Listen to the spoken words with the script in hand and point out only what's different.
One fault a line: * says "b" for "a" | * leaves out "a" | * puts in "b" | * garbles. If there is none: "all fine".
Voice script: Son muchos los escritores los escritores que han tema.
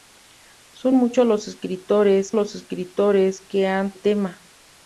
all fine